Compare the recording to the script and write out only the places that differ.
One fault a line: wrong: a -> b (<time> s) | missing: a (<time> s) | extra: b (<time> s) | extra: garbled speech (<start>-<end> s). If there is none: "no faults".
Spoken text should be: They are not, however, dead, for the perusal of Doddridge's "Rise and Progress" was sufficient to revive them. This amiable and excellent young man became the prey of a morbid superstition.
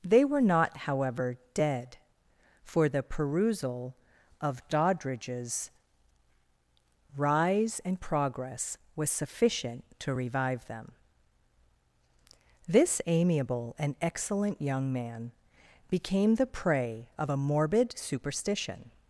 wrong: are -> were (0.2 s)